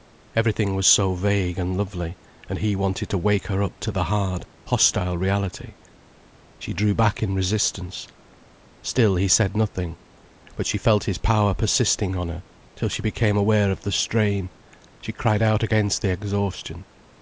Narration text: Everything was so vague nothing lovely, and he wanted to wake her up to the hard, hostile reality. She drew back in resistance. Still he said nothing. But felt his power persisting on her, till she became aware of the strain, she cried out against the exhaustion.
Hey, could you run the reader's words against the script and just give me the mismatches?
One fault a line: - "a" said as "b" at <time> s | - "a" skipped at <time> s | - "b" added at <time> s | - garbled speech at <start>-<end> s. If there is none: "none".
- "nothing" said as "and" at 1.6 s
- "she" added at 10.7 s